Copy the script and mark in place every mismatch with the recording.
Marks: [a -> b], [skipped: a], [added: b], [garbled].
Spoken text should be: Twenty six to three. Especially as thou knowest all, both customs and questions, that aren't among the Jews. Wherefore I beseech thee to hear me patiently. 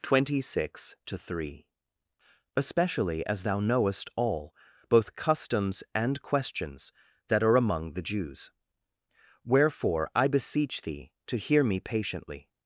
Twenty six to three. Especially as thou knowest all, both customs and questions, that [aren't -> are] among the Jews. Wherefore I beseech thee to hear me patiently.